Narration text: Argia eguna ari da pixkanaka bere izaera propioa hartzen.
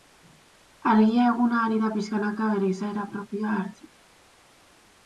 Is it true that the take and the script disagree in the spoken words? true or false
false